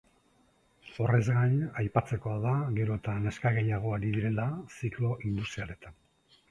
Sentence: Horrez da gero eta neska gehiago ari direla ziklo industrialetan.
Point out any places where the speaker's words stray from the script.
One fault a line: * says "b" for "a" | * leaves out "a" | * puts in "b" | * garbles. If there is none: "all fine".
* puts in "gain aipatzekoa"